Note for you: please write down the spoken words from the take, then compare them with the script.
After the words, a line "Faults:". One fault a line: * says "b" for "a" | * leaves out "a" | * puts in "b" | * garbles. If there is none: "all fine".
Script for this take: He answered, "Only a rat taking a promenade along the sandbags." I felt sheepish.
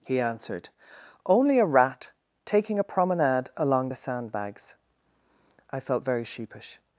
He answered, "Only a rat taking a promenade along the sandbags." I felt very sheepish.
Faults:
* puts in "very"